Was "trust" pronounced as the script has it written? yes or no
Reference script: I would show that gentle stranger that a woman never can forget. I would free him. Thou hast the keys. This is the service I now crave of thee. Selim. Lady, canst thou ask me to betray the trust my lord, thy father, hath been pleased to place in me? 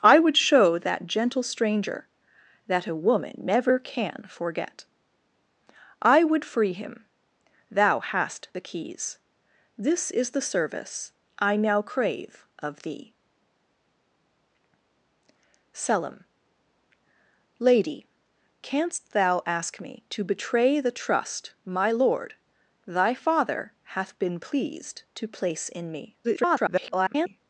yes